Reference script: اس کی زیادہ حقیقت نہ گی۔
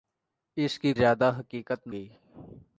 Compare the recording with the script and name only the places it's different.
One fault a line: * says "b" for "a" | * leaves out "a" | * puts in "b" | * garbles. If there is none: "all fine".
all fine